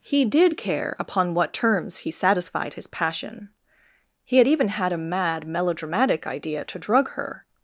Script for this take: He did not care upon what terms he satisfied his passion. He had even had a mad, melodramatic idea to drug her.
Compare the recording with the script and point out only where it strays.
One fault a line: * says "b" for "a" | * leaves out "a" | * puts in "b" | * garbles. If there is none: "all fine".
* leaves out "not"